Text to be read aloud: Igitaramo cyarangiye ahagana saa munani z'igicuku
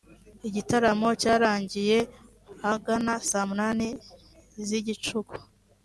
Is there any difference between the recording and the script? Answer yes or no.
no